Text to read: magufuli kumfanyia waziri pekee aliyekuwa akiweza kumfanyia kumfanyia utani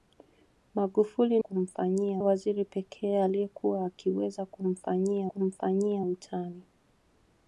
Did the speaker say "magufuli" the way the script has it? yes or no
yes